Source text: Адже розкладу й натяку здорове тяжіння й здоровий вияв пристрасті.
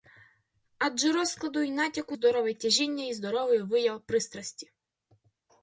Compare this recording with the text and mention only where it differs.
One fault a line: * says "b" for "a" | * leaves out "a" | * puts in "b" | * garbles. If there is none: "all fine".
all fine